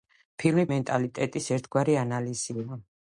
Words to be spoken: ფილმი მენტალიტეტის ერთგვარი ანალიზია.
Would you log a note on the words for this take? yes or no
no